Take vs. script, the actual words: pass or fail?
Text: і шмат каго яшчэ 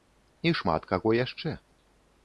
pass